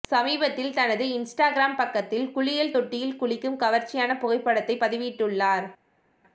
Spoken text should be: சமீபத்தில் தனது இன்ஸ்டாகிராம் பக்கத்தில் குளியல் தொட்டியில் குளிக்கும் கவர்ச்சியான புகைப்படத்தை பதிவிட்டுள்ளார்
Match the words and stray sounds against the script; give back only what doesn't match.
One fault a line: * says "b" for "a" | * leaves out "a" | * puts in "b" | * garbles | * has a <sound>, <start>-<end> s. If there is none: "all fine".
all fine